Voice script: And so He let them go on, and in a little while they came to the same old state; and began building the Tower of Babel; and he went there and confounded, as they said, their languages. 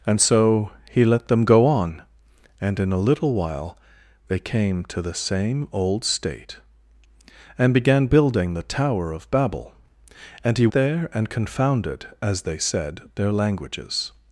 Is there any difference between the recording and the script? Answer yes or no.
yes